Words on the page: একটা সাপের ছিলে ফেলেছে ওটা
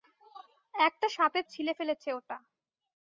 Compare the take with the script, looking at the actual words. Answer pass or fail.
pass